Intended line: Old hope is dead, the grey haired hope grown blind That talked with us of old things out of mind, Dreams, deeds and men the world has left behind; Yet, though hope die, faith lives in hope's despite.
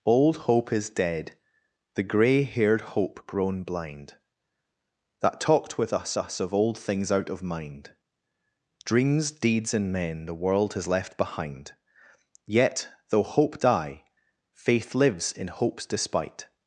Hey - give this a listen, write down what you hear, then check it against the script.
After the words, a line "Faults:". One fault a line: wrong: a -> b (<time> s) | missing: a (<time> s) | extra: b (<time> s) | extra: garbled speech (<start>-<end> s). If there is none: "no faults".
Old hope is dead, the grey haired hope grown blind That talked with us us of old things out of mind, Dreams, deeds and men the world has left behind; Yet, though hope die, faith lives in hope's despite.
Faults:
extra: us (6.2 s)